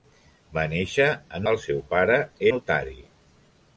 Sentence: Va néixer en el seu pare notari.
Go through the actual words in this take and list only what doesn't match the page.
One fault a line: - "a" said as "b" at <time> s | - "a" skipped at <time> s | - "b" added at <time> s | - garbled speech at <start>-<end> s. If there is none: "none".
none